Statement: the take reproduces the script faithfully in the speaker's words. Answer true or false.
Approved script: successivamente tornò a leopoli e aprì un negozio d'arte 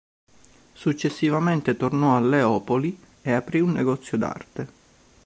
true